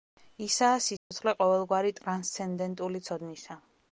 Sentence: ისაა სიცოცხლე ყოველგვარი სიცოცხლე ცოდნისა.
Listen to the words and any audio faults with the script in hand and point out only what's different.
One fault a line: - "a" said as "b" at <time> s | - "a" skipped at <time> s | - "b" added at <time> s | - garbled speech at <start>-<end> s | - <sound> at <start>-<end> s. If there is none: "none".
- dropout at 1.0-1.1 s
- "სიცოცხლე" said as "ტრანსცენდენტული" at 2.0 s